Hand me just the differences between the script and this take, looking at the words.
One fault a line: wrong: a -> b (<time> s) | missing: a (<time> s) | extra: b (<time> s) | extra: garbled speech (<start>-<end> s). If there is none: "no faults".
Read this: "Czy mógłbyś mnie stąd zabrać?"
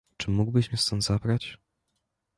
no faults